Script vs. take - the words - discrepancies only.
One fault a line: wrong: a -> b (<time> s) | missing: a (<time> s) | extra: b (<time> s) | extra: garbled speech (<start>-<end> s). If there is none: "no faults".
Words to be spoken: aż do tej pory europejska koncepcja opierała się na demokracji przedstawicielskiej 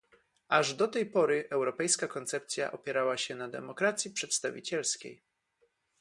no faults